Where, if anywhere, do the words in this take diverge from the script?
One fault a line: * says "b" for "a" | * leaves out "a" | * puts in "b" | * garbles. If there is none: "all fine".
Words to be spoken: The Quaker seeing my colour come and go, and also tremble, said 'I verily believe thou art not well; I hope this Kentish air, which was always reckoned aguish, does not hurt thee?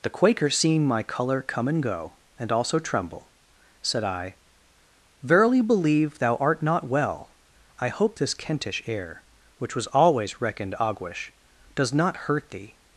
all fine